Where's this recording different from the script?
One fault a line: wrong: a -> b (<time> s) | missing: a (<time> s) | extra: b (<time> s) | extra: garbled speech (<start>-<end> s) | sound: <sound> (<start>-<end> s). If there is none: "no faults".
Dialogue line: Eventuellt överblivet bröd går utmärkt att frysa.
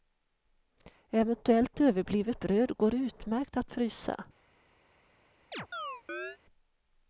sound: chirp (5.5-6.4 s)